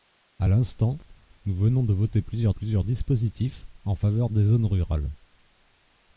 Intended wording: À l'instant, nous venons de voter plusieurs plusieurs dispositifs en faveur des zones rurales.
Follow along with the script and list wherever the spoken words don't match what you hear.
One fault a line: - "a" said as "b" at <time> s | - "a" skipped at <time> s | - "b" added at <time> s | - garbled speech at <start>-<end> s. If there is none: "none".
none